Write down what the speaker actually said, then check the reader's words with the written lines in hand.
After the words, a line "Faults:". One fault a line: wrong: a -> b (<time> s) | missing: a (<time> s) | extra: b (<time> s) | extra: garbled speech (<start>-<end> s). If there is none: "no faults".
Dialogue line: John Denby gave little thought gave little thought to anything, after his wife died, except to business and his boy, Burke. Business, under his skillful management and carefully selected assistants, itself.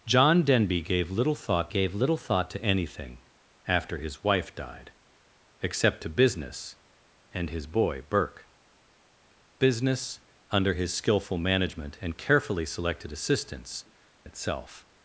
John Denby gave little thought gave little thought to anything, after his wife died, except to business and his boy, Burke. Business, under his skillful management and carefully selected assistants, itself.
Faults:
no faults